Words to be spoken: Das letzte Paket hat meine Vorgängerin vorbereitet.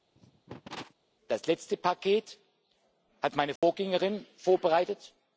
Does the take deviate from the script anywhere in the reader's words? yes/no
no